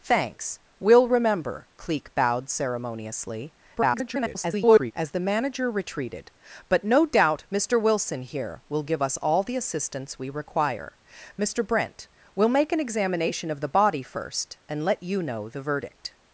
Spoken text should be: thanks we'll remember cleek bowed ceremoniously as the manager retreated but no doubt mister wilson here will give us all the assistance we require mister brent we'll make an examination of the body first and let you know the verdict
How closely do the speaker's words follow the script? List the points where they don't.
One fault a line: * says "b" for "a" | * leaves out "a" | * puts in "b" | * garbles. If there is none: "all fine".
* garbles